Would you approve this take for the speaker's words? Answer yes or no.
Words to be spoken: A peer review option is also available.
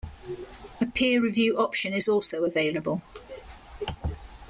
yes